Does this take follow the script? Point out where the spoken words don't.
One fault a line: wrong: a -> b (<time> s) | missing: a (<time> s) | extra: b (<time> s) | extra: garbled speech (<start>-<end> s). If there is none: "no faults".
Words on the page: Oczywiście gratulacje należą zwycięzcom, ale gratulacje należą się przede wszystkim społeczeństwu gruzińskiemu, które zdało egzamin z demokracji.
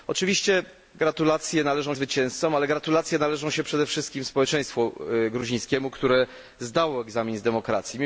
no faults